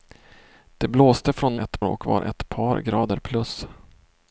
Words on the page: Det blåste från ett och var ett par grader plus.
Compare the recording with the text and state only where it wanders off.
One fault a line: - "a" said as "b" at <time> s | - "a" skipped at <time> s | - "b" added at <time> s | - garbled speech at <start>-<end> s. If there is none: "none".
none